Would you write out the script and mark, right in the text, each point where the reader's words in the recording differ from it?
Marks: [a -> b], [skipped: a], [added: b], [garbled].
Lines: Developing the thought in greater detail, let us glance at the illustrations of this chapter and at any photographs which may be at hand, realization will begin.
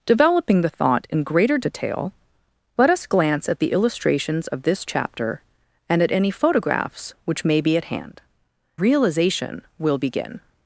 Developing the thought in greater detail, let us glance at the illustrations of this chapter and at any photographs which may be at hand, realization will begin.